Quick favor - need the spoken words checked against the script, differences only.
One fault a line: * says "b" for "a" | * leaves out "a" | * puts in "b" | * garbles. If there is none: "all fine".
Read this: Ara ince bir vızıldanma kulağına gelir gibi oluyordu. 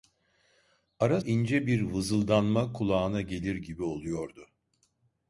all fine